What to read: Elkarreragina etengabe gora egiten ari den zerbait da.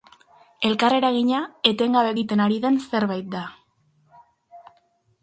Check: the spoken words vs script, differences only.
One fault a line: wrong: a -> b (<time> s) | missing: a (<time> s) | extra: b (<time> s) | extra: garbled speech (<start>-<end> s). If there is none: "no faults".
missing: gora (2.1 s)